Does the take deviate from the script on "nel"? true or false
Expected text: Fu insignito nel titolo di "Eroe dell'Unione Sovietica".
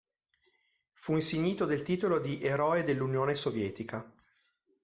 true